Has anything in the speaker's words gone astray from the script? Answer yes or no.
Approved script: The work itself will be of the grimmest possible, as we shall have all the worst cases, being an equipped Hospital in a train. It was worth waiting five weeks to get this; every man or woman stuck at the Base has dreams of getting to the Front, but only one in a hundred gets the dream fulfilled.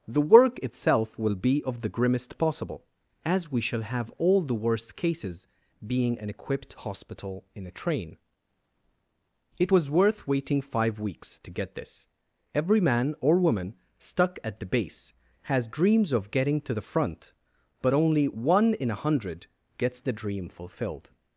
no